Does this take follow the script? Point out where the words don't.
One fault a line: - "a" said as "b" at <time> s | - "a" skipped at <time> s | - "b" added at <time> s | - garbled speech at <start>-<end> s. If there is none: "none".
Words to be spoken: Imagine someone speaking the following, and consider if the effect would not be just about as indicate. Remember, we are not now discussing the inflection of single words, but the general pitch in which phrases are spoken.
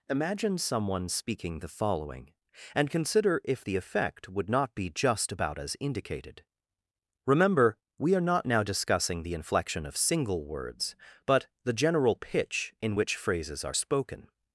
- "indicate" said as "indicated" at 5.8 s